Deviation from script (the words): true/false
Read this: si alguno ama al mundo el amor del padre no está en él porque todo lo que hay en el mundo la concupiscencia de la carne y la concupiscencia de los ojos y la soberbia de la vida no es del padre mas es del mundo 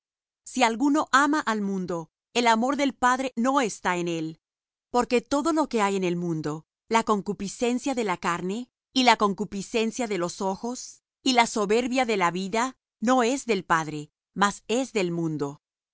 false